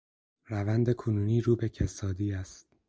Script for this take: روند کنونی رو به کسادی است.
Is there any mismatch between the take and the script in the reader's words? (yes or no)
no